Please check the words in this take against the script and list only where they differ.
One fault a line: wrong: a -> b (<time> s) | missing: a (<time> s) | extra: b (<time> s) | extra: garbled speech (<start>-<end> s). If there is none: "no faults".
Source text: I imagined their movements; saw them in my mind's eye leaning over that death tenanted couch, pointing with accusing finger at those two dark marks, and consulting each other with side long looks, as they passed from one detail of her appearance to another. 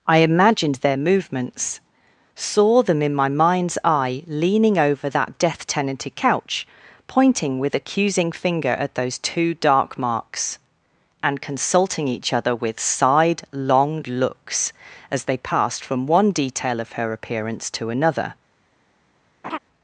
no faults